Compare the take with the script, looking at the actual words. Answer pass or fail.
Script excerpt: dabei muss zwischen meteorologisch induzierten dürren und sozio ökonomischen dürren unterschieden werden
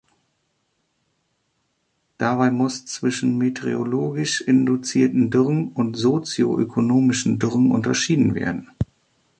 pass